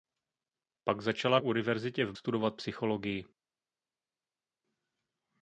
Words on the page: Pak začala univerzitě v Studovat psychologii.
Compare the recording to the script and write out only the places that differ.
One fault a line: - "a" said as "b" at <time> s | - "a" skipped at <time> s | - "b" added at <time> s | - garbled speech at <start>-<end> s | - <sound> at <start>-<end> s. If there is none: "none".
none